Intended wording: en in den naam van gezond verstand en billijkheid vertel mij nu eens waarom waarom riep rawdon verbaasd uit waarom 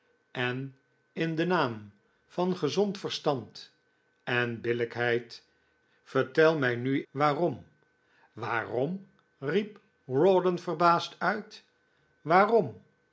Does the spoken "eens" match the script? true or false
false